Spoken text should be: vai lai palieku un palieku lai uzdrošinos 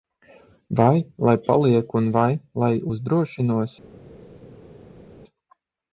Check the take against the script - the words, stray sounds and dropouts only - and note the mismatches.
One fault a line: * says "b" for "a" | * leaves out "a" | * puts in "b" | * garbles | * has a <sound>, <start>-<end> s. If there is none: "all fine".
* says "vai" for "palieku"